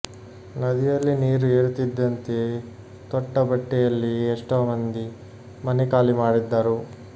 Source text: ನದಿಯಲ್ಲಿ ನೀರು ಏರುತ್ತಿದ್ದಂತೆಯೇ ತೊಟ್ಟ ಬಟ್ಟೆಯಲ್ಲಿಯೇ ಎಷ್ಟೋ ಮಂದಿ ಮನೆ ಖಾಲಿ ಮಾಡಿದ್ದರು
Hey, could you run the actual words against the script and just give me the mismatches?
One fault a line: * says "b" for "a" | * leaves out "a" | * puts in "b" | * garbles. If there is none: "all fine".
all fine